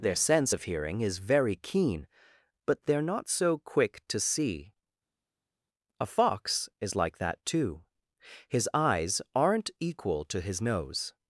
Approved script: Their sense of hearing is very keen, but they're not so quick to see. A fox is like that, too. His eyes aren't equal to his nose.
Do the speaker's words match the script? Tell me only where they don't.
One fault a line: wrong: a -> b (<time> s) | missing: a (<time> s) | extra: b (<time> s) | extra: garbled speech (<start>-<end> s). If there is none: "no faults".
no faults